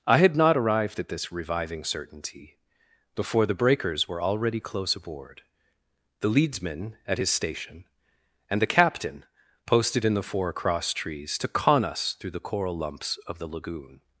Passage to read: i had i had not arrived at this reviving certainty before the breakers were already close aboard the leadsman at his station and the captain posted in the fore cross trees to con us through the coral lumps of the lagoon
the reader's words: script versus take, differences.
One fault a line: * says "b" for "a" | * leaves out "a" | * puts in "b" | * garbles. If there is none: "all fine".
* leaves out "i had"